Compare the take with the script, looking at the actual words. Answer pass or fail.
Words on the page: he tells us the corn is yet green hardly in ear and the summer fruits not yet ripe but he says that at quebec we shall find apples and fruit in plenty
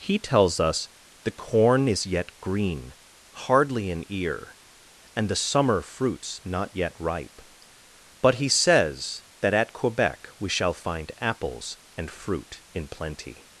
pass